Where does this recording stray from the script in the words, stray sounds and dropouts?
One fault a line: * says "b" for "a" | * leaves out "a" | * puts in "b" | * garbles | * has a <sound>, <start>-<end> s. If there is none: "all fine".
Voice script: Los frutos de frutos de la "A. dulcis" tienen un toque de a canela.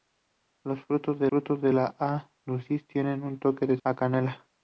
all fine